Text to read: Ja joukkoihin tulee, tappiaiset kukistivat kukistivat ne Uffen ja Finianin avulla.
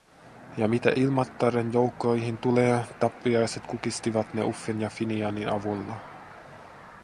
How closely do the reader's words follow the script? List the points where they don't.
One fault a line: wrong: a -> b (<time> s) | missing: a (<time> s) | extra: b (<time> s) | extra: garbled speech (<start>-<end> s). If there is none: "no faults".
extra: mitä Ilmattaren (0.7 s)
missing: kukistivat (4.3 s)